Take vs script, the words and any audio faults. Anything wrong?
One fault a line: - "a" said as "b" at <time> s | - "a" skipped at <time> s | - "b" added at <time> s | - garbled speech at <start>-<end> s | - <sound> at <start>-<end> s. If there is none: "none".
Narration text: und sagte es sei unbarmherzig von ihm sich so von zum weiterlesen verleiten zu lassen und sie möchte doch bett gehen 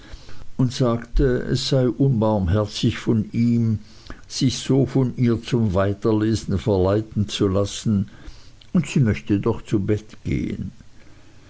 - "ihr" added at 5.2 s
- "zu" added at 9.6 s